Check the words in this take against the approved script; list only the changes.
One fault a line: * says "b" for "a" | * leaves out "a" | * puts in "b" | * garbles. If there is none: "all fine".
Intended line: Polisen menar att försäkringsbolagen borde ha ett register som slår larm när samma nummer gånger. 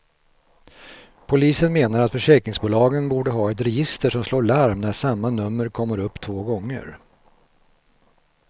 * puts in "kommer upp två"